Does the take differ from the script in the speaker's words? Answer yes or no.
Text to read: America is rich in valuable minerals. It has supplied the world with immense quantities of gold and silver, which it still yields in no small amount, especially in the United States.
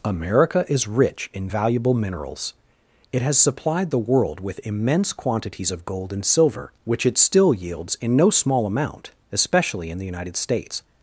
no